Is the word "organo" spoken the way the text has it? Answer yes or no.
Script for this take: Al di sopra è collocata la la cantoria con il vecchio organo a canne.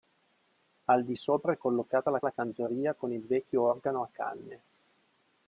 yes